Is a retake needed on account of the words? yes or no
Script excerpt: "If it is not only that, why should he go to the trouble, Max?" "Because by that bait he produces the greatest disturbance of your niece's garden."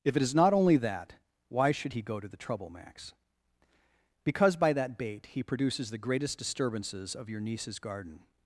yes